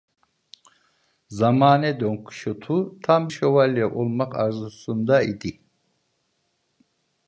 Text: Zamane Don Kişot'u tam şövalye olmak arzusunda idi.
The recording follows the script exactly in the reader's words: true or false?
true